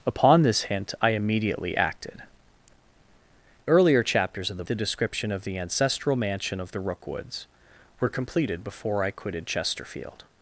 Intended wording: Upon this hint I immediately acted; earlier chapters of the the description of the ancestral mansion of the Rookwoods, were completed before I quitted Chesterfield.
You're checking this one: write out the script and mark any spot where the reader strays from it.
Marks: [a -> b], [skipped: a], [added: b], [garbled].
Upon this hint I immediately acted; earlier chapters of the the description of the ancestral mansion of the Rookwoods, were completed before I quitted Chesterfield.